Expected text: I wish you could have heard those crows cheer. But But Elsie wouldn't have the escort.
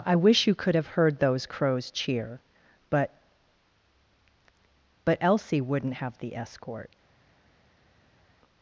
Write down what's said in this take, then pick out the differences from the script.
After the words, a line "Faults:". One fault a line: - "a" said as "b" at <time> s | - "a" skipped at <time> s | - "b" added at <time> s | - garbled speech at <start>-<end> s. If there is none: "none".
I wish you could have heard those crows cheer. But But Elsie wouldn't have the escort.
Faults:
none